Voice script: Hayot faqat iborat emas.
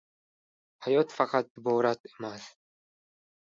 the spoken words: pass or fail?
pass